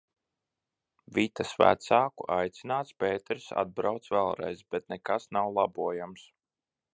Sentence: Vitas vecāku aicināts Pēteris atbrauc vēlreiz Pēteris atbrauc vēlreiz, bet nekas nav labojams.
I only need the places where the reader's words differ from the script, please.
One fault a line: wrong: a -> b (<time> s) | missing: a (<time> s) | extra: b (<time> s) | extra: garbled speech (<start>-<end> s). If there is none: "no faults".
missing: Pēteris atbrauc vēlreiz (4.7 s)